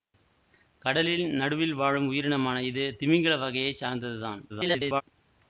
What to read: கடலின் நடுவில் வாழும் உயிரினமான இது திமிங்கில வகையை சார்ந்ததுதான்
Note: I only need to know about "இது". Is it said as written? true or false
true